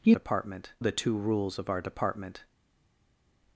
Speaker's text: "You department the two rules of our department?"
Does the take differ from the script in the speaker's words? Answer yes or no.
no